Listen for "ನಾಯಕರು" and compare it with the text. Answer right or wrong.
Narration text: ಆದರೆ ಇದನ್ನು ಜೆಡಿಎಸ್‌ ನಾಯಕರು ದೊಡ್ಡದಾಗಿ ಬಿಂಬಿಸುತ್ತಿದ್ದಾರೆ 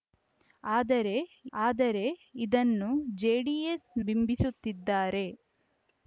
wrong